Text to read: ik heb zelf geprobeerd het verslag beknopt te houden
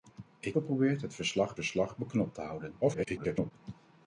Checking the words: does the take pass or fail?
fail